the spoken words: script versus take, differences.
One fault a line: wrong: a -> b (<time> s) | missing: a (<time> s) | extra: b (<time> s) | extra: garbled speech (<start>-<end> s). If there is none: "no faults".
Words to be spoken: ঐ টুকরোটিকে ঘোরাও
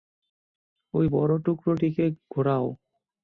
extra: বড় (1.1 s)